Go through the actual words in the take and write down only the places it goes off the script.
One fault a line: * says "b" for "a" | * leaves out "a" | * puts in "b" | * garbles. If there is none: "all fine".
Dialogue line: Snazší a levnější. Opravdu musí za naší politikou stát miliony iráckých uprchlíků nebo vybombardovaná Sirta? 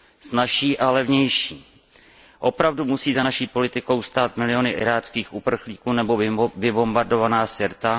all fine